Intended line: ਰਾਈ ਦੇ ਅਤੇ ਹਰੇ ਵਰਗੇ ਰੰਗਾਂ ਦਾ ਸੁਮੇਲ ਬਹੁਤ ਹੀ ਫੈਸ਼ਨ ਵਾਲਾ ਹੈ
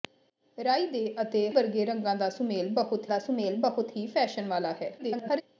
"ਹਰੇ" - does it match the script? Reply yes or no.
no